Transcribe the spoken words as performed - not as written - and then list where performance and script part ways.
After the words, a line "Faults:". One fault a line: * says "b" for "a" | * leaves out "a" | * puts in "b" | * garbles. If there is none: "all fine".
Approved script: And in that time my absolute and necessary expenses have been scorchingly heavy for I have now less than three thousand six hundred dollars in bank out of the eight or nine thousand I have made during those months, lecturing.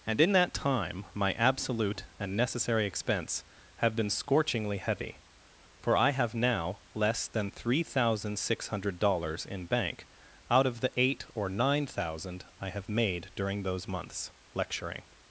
And in that time my absolute and necessary expense have been scorchingly heavy for I have now less than three thousand six hundred dollars in bank out of the eight or nine thousand I have made during those months, lecturing.
Faults:
* says "expense" for "expenses"